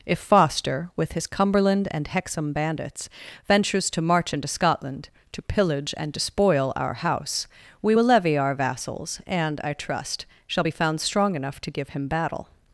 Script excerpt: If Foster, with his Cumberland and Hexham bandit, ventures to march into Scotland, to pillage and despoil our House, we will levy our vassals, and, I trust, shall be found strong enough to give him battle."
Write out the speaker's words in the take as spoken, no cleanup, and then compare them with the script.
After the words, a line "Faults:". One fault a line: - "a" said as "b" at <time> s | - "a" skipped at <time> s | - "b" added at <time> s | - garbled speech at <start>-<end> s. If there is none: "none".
If Foster, with his Cumberland and Hexham bandits, ventures to march into Scotland, to pillage and despoil our House, we will levy our vassals, and, I trust, shall be found strong enough to give him battle."
Faults:
- "bandit" said as "bandits" at 2.5 s